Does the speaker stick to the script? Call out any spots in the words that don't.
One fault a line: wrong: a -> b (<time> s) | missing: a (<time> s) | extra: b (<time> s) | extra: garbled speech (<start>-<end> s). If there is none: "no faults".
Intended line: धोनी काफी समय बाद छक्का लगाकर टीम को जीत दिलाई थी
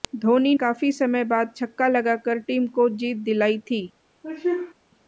no faults